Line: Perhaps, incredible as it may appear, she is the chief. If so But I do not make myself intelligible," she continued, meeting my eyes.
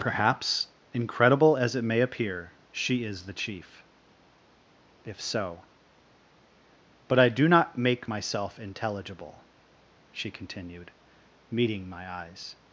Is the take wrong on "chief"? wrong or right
right